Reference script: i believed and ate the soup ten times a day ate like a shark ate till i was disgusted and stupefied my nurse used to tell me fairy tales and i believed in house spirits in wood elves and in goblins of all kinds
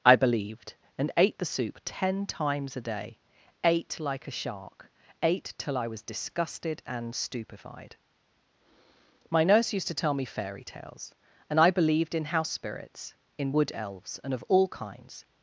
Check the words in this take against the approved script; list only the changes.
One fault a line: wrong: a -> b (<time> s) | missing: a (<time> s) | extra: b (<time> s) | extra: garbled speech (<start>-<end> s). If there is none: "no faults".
missing: in goblins (14.3 s)